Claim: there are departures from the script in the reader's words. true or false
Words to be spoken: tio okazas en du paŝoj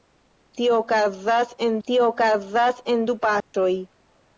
true